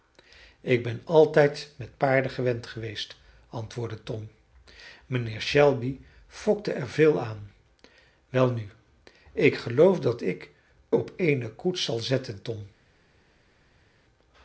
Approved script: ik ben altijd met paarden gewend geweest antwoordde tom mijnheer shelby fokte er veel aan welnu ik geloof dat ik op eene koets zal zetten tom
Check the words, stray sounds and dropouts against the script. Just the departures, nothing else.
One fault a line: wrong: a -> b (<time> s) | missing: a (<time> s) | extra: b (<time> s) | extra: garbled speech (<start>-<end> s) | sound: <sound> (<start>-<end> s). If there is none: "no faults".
no faults